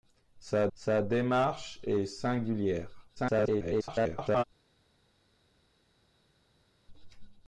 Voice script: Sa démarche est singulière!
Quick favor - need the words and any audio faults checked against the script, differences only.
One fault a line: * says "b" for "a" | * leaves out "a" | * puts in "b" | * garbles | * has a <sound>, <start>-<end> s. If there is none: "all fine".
* puts in "sa"
* garbles